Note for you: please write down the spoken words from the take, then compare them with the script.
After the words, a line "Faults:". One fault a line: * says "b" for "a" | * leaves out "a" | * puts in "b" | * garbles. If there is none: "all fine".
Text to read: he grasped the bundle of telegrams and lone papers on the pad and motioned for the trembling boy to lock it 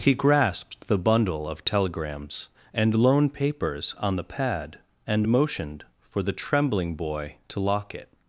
he grasped the bundle of telegrams and lone papers on the pad and motioned for the trembling boy to lock it
Faults:
all fine